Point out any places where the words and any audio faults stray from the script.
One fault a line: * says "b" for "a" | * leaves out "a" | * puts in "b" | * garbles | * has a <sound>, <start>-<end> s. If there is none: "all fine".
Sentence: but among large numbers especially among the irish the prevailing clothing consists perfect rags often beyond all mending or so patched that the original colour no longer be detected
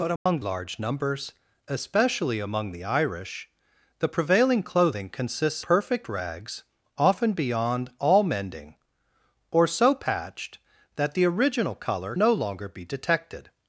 * has a dropout, 0.2-0.3 s